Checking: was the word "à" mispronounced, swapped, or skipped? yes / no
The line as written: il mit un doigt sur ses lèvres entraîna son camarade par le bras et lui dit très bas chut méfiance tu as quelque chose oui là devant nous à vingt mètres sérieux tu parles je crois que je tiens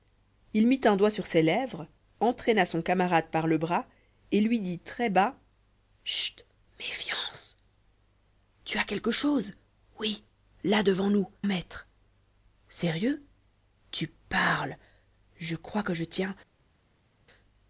yes